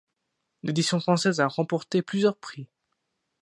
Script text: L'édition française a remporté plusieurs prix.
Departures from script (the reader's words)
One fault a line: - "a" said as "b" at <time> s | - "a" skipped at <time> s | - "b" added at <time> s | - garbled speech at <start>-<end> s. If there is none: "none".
none